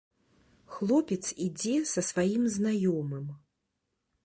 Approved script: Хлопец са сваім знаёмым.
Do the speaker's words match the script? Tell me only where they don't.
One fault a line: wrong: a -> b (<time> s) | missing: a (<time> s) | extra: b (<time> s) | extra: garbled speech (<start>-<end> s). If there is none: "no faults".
extra: ідзе (1.5 s)